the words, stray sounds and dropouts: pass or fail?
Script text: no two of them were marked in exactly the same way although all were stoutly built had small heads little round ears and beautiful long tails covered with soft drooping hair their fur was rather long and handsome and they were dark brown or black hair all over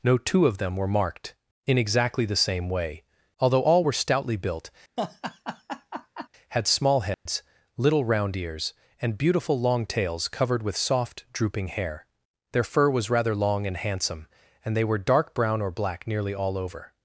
fail